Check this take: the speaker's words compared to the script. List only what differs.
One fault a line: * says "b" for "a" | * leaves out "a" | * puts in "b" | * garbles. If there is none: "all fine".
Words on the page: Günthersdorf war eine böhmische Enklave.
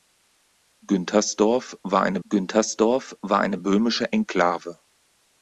* puts in "günthersdorf war eine"